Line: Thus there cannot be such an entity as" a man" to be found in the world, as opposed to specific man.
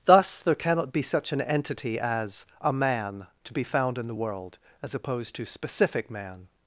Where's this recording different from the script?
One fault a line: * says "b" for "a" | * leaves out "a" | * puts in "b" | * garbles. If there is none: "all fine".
all fine